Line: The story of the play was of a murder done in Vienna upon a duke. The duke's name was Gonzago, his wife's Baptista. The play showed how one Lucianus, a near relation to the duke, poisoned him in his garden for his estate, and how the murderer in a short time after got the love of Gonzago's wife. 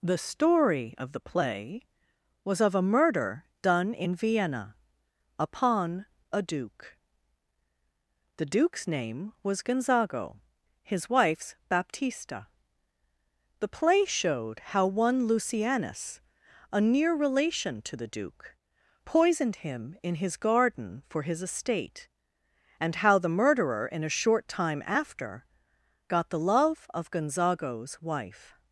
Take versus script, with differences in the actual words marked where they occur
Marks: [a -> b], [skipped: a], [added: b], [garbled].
The story of the play was of a murder done in Vienna upon a duke. The duke's name was Gonzago, his wife's Baptista. The play showed how one Lucianus, a near relation to the duke, poisoned him in his garden for his estate, and how the murderer in a short time after got the love of Gonzago's wife.